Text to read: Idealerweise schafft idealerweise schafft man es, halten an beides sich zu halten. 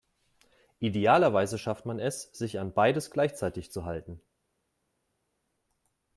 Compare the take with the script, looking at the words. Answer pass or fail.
fail